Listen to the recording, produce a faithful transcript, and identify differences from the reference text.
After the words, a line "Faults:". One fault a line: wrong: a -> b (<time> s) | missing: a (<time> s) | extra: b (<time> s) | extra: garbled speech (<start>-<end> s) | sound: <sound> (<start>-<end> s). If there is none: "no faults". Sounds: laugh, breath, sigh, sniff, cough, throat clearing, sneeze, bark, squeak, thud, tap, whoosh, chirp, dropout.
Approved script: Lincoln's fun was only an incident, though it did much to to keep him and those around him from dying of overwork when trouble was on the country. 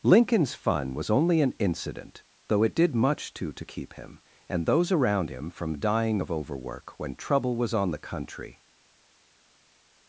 Lincoln's fun was only an incident, though it did much to to keep him and those around him from dying of overwork when trouble was on the country.
Faults:
no faults